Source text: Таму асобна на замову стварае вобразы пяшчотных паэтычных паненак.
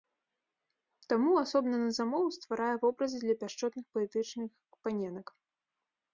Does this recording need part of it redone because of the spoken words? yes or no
yes